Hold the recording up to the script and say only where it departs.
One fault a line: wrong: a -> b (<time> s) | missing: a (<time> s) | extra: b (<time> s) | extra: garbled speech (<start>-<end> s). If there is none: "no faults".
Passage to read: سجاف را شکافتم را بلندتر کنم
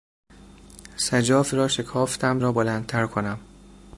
no faults